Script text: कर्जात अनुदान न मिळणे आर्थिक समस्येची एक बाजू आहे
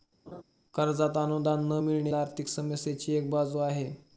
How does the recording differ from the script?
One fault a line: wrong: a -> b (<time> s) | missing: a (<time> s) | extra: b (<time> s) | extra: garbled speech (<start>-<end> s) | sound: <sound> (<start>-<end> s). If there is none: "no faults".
sound: laugh (0.3-0.4 s)